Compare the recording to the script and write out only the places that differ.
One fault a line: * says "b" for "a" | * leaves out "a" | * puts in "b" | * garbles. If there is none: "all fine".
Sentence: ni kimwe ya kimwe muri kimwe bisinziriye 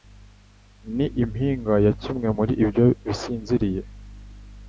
* says "impinga" for "kimwe"
* says "ibyo" for "kimwe"